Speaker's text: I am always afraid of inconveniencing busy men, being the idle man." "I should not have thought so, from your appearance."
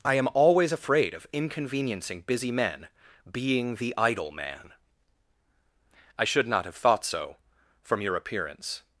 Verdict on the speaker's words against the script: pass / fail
pass